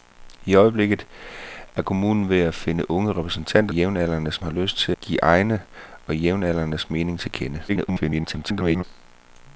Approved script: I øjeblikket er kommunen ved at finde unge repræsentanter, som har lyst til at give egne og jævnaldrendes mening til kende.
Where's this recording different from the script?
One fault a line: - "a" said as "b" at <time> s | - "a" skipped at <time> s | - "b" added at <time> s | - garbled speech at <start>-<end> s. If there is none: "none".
- "som" said as "jævnaldrendes" at 3.7 s
- "at" skipped at 4.9 s
- garbled speech at 7.7-8.8 s